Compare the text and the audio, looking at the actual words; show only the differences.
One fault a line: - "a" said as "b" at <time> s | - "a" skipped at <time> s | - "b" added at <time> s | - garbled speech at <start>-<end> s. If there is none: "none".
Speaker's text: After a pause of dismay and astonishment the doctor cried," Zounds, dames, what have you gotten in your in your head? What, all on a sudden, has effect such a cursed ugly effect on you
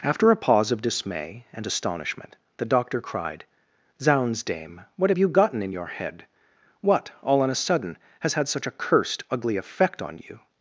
- "dames" said as "dame" at 4.4 s
- "in your" skipped at 5.9 s
- "effect" said as "had" at 8.3 s